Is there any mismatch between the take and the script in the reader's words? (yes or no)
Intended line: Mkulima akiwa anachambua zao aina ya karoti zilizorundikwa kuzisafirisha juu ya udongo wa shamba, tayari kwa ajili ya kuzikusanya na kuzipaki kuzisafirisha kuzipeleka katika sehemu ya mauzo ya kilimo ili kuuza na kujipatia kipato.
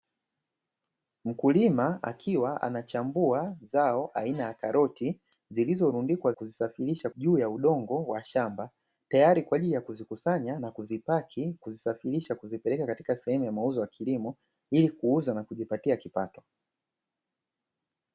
no